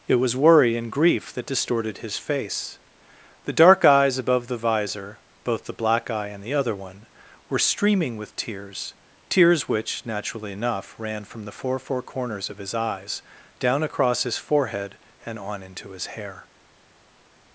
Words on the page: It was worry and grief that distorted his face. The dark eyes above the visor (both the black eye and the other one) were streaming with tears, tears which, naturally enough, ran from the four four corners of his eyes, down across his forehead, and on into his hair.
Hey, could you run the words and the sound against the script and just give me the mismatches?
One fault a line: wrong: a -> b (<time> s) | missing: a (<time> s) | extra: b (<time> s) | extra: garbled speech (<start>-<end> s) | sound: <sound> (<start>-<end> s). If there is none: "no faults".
no faults